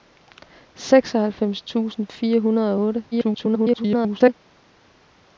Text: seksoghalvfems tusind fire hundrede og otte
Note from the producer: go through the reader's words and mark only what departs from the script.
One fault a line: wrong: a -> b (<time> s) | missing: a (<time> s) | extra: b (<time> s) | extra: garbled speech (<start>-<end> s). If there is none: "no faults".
extra: garbled speech (3.1-4.3 s)